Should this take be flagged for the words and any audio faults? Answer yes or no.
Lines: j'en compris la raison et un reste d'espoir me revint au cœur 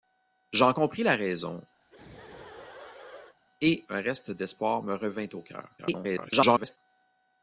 yes